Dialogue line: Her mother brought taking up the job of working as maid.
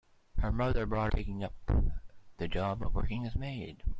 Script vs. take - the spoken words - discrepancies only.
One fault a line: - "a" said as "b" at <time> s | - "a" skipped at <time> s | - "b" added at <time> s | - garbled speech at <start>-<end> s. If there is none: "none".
none